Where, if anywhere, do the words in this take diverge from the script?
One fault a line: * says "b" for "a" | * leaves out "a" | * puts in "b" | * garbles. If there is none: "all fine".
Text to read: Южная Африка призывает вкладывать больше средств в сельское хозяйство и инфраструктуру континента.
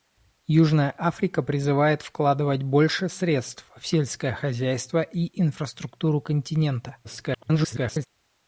* garbles